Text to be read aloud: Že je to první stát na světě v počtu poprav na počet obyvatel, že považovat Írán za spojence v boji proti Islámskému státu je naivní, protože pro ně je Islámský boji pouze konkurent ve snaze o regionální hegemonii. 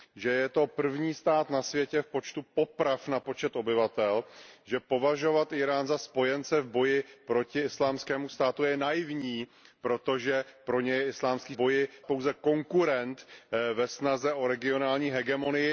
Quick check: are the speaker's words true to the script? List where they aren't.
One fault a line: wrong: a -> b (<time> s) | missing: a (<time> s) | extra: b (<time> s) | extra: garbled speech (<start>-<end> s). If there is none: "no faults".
no faults